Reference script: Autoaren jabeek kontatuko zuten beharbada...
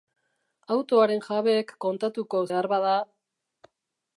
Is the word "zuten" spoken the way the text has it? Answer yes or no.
no